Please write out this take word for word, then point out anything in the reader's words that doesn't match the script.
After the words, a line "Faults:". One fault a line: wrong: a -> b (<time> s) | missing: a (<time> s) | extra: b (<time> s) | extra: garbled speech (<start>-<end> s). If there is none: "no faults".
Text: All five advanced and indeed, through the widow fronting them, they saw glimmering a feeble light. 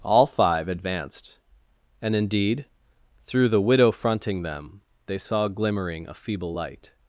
All five advanced and indeed, through the widow fronting them, they saw glimmering a feeble light.
Faults:
no faults